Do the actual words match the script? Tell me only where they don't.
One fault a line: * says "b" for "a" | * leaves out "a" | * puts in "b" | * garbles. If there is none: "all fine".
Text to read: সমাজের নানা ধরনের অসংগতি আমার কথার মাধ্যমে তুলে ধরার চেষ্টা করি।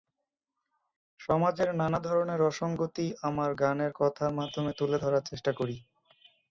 * puts in "গানের"